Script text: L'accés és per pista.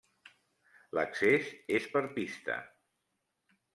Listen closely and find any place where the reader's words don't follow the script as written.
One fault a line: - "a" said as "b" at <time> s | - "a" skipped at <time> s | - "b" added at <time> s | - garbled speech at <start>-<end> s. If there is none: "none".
none